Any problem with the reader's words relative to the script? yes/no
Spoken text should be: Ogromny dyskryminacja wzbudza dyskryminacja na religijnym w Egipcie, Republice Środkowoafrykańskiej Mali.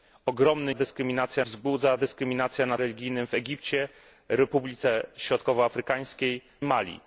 no